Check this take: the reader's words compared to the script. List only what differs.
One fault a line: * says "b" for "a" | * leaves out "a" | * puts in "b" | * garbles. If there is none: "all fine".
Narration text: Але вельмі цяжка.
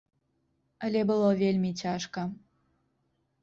* puts in "было"